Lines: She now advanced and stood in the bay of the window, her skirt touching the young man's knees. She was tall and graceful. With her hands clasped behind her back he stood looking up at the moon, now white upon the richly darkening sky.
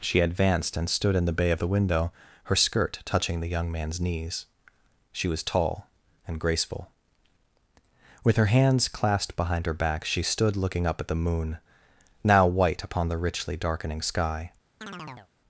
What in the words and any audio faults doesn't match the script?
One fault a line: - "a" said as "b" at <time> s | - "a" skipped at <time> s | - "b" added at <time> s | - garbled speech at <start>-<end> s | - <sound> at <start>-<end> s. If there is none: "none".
- "now" skipped at 0.2 s
- "he" said as "she" at 10.0 s
- chirp at 14.8-15.3 s